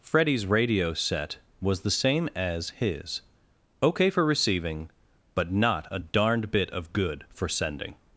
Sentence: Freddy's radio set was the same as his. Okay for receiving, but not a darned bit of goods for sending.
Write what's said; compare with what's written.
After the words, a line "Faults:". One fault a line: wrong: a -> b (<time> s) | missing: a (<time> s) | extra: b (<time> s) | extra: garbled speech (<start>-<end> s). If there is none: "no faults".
Freddy's radio set was the same as his. Okay for receiving, but not a darned bit of good for sending.
Faults:
wrong: goods -> good (6.9 s)